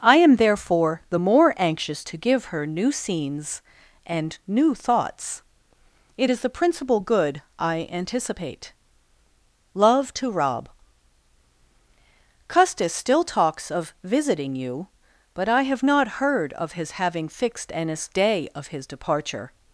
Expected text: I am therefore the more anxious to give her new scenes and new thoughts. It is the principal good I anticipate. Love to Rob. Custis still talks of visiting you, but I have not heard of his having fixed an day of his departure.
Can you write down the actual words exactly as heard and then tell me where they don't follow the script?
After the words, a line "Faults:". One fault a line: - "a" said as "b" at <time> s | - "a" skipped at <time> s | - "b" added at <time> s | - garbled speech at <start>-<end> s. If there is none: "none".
I am therefore the more anxious to give her new scenes and new thoughts. It is the principal good I anticipate. Love to Rob. Custis still talks of visiting you, but I have not heard of his having fixed an day of his departure.
Faults:
none